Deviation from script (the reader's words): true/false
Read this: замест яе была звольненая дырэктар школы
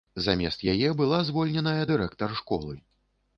false